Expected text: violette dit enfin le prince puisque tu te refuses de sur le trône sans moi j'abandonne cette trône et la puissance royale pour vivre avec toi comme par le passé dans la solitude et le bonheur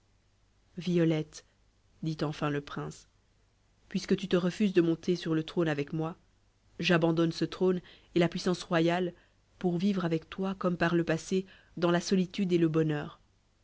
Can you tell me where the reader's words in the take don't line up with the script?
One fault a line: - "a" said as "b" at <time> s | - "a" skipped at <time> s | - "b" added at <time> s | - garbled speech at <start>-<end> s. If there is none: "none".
- "monter" added at 4.8 s
- "sans" said as "avec" at 5.7 s
- "cette" said as "ce" at 7.3 s